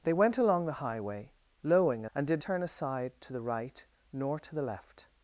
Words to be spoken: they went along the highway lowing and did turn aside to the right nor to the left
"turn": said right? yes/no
yes